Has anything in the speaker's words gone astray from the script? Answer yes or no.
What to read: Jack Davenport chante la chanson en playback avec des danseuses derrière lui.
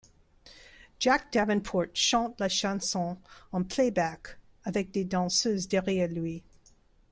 no